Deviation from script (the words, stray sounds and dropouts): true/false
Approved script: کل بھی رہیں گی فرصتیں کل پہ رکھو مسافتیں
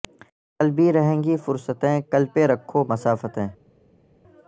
false